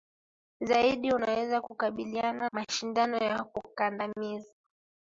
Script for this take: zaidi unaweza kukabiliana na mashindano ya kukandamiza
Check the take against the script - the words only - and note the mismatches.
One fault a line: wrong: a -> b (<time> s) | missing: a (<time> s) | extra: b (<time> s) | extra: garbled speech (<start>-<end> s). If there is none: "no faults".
missing: na (2.5 s)